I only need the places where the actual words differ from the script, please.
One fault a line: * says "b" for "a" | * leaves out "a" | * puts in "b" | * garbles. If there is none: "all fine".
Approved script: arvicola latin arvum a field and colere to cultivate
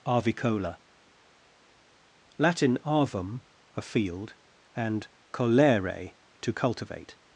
all fine